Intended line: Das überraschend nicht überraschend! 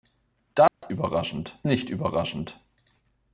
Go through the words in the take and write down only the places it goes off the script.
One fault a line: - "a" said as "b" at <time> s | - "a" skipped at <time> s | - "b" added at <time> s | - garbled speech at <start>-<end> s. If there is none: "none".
none